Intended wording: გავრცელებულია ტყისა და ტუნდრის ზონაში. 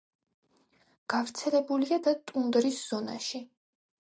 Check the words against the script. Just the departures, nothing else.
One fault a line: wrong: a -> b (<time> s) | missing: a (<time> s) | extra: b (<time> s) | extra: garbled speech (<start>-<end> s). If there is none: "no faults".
missing: ტყისა (2.0 s)